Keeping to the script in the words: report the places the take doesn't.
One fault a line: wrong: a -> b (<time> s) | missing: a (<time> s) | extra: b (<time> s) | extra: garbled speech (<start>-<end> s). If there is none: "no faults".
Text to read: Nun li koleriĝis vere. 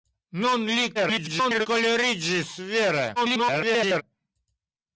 extra: garbled speech (0.9-1.7 s)
extra: garbled speech (3.2-4.0 s)